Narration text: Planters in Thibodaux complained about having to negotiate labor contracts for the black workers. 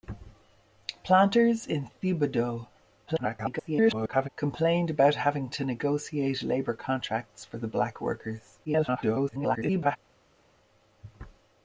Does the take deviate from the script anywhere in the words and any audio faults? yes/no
yes